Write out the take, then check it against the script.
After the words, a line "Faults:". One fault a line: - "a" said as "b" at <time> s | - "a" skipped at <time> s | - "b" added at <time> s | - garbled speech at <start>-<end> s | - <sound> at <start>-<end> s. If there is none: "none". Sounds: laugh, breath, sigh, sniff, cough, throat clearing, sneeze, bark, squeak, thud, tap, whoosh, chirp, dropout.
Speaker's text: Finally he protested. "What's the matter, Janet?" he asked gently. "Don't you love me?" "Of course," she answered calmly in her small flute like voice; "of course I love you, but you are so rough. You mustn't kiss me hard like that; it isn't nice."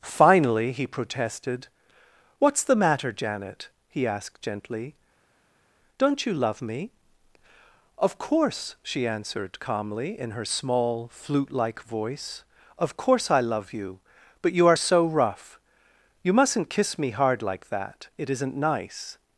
Finally he protested. "What's the matter, Janet?" he asked gently. "Don't you love me?" "Of course," she answered calmly in her small flute like voice; "of course I love you, but you are so rough. You mustn't kiss me hard like that; it isn't nice."
Faults:
none